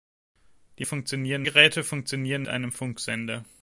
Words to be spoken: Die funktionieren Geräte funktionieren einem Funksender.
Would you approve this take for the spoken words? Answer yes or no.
yes